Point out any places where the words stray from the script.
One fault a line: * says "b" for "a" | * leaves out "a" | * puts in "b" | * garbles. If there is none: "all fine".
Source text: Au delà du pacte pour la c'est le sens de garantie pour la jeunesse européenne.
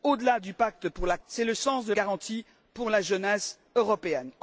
all fine